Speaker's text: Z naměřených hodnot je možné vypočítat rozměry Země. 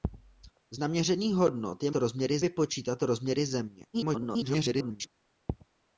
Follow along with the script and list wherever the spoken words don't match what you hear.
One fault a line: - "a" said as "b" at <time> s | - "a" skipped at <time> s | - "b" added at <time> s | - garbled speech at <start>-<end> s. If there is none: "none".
- "možné" said as "rozměry" at 1.9 s
- garbled speech at 3.9-5.1 s